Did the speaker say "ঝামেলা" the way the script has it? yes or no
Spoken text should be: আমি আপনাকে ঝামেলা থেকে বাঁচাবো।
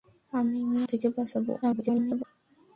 no